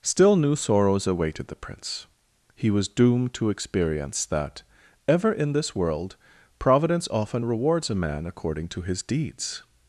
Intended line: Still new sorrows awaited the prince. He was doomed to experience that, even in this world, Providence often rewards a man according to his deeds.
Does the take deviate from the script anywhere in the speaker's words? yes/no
yes